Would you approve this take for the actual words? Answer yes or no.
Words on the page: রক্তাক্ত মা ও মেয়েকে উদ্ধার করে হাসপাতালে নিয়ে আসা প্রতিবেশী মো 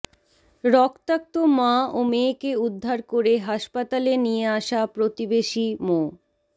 yes